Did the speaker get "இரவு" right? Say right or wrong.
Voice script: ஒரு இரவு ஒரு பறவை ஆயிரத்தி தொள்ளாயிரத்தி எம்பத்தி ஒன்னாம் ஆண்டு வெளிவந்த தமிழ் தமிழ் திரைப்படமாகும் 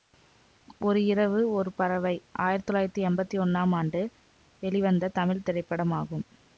right